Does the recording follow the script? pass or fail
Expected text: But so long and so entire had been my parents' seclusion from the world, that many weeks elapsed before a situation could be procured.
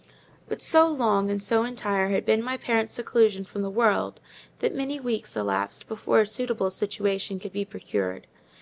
fail